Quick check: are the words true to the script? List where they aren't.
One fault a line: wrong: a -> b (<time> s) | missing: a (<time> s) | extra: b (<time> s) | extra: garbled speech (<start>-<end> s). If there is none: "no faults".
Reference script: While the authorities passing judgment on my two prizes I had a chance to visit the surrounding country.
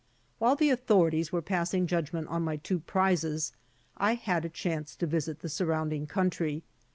extra: were (1.3 s)